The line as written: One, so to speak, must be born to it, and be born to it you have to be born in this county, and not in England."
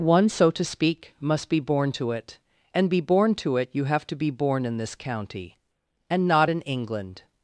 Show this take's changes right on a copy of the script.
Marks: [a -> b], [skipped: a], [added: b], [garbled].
One, so to speak, must be born to it, and be born to it you have to be born in this county, and not in England."